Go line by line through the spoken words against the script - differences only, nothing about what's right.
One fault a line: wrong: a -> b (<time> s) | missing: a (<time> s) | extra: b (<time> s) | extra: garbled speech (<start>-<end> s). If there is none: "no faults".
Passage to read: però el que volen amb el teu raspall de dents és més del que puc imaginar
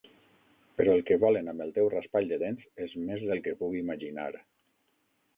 no faults